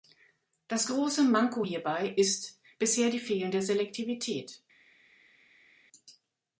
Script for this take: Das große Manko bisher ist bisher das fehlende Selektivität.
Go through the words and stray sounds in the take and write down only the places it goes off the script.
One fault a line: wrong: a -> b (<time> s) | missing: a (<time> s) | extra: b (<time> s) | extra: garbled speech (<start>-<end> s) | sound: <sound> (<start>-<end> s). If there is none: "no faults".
wrong: bisher -> hierbei (1.6 s)
wrong: das -> die (3.1 s)